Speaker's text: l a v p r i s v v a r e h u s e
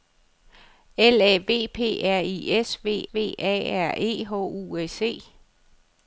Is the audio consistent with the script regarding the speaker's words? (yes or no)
yes